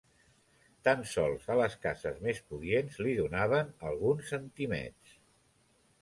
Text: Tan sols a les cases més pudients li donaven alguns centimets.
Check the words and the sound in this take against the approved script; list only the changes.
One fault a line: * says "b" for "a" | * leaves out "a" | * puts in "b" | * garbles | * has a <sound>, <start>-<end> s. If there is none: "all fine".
all fine